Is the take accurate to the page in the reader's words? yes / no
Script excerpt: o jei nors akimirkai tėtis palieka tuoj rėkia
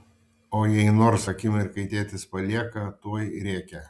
yes